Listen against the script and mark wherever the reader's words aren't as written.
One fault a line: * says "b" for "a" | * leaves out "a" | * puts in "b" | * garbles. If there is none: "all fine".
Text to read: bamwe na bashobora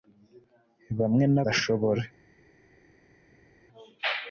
all fine